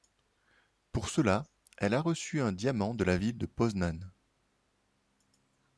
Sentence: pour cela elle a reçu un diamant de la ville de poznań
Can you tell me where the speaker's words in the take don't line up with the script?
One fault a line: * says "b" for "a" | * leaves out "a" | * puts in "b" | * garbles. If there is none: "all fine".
all fine